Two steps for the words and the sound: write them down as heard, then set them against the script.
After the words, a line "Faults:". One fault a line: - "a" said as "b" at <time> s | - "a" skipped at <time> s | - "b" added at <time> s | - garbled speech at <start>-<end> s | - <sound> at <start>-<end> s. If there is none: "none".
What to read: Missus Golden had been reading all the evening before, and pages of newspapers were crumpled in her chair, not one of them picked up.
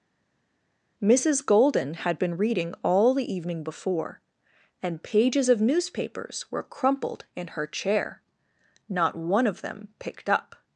Missus Golden had been reading all the evening before, and pages of newspapers were crumpled in her chair, not one of them picked up.
Faults:
none